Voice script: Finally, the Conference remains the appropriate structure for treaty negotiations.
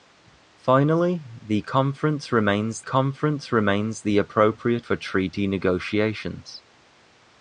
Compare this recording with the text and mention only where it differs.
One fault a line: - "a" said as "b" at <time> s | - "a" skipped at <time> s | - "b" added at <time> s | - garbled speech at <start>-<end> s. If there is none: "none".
- "Conference remains" added at 2.8 s
- "structure" skipped at 4.9 s